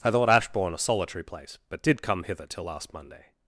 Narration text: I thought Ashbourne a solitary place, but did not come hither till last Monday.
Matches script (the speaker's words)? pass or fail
fail